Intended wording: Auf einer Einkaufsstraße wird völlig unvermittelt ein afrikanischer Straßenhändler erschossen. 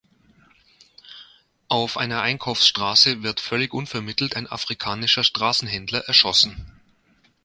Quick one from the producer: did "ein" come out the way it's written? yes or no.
yes